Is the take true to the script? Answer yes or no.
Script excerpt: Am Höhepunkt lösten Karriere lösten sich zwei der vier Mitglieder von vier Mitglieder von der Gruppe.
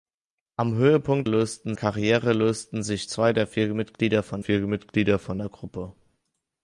yes